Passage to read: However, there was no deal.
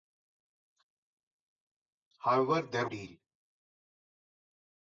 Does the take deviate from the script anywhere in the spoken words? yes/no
yes